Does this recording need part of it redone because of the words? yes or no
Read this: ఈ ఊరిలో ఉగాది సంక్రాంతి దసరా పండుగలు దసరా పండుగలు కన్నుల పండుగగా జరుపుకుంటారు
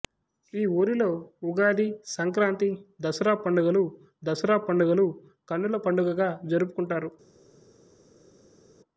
no